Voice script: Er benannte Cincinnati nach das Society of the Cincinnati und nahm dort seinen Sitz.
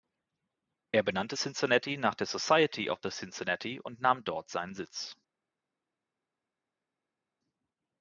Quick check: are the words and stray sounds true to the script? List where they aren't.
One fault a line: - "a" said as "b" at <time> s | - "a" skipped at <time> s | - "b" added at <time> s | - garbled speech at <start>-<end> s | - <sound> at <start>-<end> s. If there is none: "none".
- "das" said as "der" at 2.1 s